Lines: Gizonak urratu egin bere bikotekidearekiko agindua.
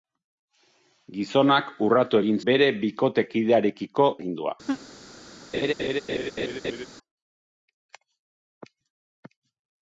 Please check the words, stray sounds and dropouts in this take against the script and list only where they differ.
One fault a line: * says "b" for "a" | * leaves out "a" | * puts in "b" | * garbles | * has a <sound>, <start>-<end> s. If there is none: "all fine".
* has a laugh, 4.7-4.9 s
* has a laugh, 5.5-6.9 s